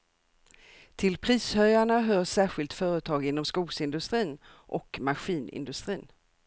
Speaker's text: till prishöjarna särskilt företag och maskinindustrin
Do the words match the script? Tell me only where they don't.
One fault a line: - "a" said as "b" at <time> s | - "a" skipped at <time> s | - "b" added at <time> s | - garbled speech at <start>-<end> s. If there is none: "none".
- "hör" added at 2.0 s
- "inom skogsindustrin" added at 3.2 s